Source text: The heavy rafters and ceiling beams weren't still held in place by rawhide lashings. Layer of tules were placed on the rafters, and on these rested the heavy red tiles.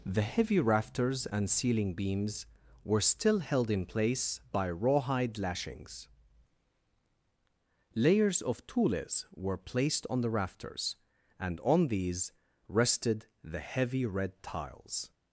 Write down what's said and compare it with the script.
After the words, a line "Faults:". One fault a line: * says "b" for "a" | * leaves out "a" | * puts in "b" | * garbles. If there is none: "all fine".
The heavy rafters and ceiling beams were still held in place by rawhide lashings. Layers of tules were placed on the rafters, and on these rested the heavy red tiles.
Faults:
* says "were" for "weren't"
* says "Layers" for "Layer"